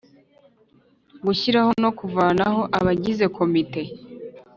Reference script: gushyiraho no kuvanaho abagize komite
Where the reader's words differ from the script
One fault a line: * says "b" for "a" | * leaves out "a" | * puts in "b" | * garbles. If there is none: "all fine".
all fine